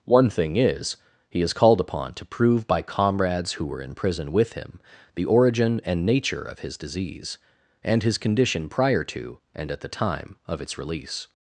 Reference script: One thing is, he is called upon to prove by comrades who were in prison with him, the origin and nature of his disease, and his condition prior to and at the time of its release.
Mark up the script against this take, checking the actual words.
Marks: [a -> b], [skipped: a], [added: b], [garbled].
One thing is, he is called upon to prove by comrades who were in prison with him, the origin and nature of his disease, and his condition prior to and at the time of its release.